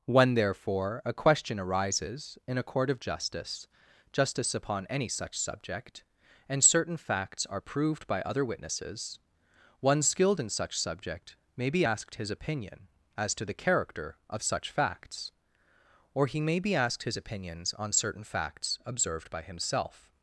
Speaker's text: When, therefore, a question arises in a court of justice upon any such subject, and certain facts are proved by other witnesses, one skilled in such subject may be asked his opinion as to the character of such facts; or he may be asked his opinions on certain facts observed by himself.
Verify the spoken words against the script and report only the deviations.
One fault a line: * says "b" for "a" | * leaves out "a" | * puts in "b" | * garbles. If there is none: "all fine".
* puts in "justice"